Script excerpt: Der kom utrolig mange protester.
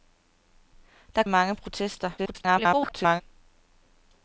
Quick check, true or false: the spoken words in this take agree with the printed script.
false